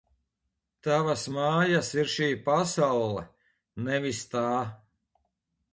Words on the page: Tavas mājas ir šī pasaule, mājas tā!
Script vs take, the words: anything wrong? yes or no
yes